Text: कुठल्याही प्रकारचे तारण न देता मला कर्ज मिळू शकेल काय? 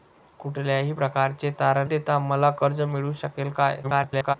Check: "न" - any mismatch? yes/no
yes